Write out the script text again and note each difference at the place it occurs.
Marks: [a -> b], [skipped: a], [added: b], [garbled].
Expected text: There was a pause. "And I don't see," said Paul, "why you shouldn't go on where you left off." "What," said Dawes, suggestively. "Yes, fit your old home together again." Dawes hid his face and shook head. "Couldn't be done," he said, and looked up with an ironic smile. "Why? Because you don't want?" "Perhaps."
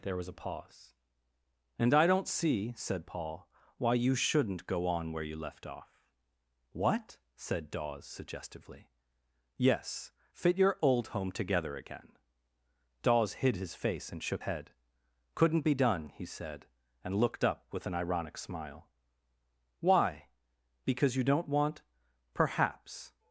There was a pause. "And I don't see," said Paul, "why you shouldn't go on where you left off." "What," said Dawes, suggestively. "Yes, fit your old home together again." Dawes hid his face and shook head. "Couldn't be done," he said, and looked up with an ironic smile. "Why? Because you don't want?" "Perhaps."